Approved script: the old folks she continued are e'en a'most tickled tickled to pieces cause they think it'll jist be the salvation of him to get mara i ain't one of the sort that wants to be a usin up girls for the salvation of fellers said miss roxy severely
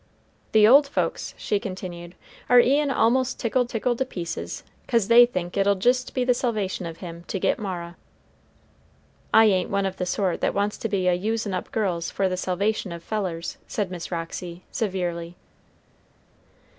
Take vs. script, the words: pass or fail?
pass